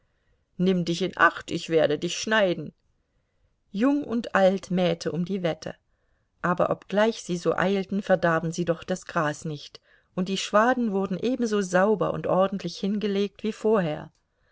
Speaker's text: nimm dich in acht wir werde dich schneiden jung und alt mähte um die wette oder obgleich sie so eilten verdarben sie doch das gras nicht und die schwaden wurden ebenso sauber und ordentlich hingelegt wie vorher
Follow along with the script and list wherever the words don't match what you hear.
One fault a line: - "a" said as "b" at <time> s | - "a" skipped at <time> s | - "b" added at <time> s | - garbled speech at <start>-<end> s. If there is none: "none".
- "wir" said as "ich" at 1.5 s
- "oder" said as "aber" at 6.4 s